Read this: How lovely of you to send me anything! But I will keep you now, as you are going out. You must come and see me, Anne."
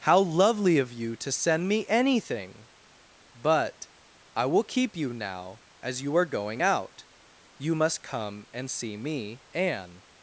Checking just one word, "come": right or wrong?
right